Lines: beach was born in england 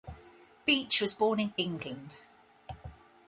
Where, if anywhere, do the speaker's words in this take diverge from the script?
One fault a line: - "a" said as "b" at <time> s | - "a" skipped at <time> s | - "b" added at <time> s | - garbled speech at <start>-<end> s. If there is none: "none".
none